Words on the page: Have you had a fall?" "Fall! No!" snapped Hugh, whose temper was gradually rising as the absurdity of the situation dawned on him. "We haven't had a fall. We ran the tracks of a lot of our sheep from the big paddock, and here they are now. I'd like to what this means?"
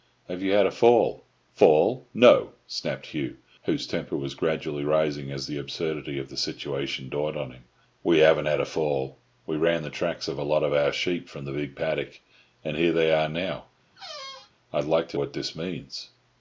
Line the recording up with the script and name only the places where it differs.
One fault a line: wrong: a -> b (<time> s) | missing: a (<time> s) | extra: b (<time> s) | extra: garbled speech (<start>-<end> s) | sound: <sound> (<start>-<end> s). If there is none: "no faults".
sound: squeak (13.9-14.5 s)